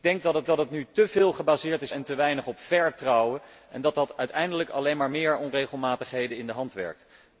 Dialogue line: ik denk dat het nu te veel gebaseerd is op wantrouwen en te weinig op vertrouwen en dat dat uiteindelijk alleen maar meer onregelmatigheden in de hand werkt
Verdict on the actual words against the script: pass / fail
fail